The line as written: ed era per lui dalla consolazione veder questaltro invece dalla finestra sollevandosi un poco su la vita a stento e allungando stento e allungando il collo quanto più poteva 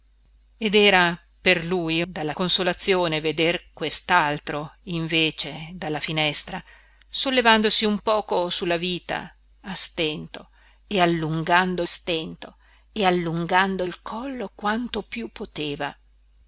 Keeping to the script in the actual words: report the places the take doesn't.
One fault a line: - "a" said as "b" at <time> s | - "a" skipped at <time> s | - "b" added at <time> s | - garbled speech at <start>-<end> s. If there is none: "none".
none